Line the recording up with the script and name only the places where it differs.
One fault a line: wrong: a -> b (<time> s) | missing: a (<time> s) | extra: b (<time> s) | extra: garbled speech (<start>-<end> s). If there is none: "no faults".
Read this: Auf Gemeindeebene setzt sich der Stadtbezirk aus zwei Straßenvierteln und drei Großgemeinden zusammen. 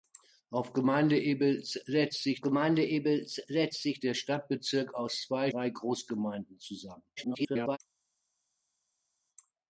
extra: Gemeindeebene setzt sich (2.4 s)
missing: Straßenvierteln und (5.5 s)
extra: garbled speech (7.2-7.8 s)